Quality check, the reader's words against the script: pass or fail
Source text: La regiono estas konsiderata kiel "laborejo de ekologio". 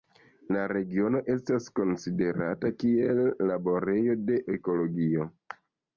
pass